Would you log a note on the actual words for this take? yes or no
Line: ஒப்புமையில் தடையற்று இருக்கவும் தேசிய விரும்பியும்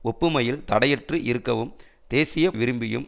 no